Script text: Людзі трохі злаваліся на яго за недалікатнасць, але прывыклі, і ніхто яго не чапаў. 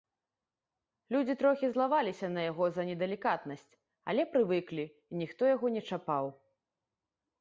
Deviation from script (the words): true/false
false